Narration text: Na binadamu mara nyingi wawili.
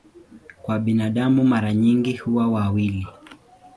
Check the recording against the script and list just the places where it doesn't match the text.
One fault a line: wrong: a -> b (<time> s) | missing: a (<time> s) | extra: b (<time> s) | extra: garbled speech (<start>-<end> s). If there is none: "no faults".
wrong: Na -> Kwa (0.6 s)
extra: huwa (2.2 s)